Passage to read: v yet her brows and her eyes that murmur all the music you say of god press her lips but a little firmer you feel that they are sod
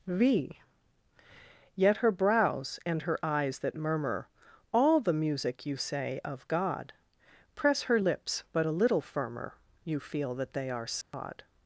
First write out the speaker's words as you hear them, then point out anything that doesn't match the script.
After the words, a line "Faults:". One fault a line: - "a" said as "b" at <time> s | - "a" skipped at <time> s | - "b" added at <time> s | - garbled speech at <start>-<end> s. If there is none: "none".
v yet her brows and her eyes that murmur all the music you say of god press her lips but a little firmer you feel that they are sod
Faults:
none